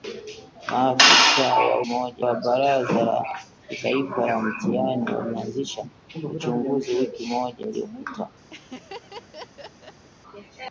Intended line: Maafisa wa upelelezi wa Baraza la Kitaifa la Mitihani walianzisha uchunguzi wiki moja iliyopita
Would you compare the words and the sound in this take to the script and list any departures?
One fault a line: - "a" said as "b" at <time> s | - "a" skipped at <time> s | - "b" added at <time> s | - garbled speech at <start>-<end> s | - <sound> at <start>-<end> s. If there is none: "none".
- "upelelezi" said as "moja" at 1.9 s
- laugh at 8.5-10.0 s